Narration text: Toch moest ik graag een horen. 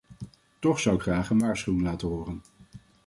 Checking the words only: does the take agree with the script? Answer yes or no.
no